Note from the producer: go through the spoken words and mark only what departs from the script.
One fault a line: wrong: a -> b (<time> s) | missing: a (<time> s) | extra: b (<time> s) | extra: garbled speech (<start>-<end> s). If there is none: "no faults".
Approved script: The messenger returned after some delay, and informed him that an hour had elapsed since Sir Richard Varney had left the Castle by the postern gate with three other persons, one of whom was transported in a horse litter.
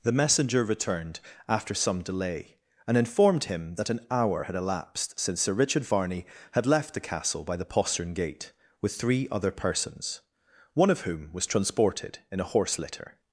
no faults